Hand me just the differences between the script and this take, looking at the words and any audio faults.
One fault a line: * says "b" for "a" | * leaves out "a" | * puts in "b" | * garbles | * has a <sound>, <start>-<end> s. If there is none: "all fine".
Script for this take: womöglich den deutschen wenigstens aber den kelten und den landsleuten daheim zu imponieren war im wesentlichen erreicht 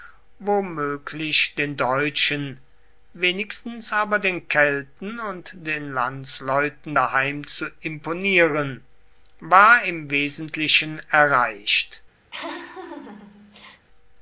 * has a laugh, 12.3-13.9 s